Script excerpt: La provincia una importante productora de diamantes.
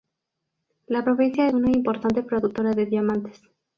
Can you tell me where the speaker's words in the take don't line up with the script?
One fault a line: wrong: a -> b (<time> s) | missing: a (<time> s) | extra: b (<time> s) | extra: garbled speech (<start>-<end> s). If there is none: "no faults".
no faults